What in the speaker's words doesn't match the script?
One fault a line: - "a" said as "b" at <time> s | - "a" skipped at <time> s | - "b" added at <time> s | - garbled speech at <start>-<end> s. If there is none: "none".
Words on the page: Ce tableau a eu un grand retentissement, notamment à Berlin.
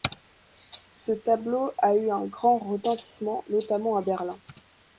none